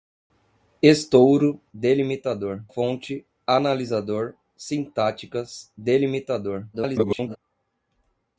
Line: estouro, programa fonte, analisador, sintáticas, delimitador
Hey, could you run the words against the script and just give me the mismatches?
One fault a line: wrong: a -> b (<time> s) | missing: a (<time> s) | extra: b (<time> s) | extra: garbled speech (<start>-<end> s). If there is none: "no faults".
wrong: programa -> delimitador (1.7 s)
extra: garbled speech (6.7-7.4 s)